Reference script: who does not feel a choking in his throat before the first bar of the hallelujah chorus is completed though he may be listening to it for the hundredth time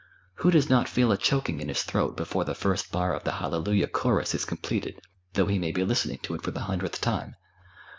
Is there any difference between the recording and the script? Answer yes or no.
no